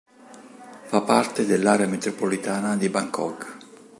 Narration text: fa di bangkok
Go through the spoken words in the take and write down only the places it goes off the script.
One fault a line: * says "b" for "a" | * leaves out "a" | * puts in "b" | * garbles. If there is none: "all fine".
* puts in "parte dell'area metropolitana"